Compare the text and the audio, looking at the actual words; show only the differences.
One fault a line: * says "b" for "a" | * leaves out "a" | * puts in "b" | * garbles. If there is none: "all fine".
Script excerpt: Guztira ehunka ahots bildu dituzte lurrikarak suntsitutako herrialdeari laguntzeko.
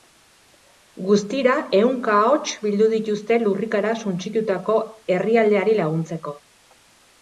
all fine